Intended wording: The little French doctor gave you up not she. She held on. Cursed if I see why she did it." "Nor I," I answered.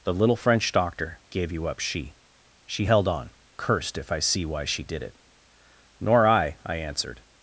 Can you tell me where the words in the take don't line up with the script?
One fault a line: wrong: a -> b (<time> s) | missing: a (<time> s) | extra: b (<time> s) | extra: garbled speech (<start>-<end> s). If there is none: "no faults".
missing: not (1.8 s)